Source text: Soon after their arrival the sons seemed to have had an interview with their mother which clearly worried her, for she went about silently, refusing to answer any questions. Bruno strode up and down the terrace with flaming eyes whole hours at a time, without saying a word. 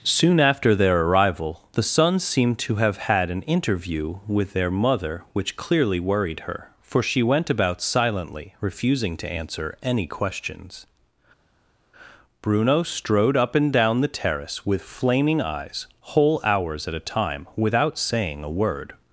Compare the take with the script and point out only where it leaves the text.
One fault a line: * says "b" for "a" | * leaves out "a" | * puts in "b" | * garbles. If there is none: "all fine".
all fine